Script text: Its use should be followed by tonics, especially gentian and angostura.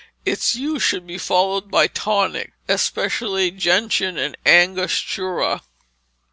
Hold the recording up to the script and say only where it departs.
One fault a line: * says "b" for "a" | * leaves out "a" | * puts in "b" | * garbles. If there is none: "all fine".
all fine